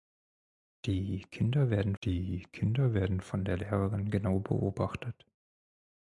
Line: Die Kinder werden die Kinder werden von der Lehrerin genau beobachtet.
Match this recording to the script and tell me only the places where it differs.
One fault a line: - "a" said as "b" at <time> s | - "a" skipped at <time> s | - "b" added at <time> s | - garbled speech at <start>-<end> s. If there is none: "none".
none